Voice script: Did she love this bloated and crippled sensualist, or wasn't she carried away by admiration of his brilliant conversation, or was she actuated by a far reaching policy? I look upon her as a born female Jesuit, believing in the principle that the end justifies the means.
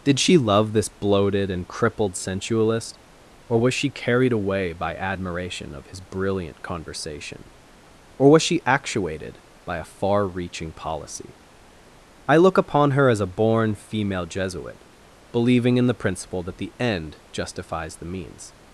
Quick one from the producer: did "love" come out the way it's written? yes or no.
yes